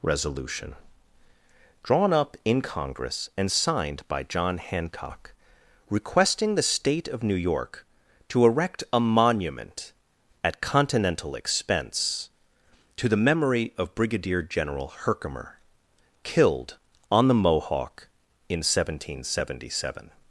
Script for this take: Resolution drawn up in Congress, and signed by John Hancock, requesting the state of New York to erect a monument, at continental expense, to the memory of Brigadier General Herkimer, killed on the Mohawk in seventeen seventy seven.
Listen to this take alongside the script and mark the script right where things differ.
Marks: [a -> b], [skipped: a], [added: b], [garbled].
Resolution drawn up in Congress, and signed by John Hancock, requesting the state of New York to erect a monument, at continental expense, to the memory of Brigadier General Herkimer, killed on the Mohawk in seventeen seventy seven.